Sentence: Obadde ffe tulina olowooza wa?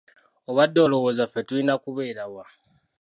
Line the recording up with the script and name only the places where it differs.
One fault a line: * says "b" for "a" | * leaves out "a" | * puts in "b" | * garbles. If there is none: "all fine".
* puts in "olowooza"
* says "kubeera" for "olowooza"